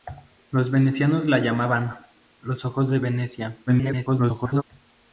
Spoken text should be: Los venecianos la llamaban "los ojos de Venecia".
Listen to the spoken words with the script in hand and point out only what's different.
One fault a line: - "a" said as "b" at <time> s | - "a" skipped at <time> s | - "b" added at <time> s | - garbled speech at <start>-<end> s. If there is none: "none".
- garbled speech at 3.7-4.6 s